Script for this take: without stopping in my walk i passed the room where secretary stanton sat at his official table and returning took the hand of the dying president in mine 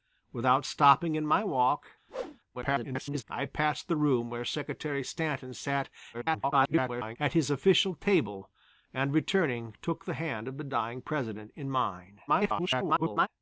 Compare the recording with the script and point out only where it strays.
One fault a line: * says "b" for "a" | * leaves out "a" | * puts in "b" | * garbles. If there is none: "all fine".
* garbles
* garbles
* garbles